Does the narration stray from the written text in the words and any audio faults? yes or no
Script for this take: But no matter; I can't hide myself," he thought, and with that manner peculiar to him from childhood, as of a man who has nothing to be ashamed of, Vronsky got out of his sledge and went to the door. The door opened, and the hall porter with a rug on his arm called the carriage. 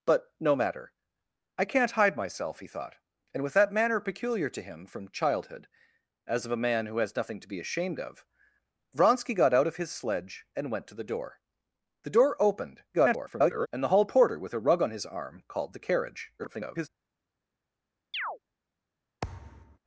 yes